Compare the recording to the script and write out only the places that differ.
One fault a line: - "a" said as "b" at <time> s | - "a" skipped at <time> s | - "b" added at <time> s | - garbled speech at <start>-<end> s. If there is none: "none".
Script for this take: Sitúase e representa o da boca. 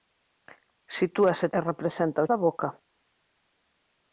none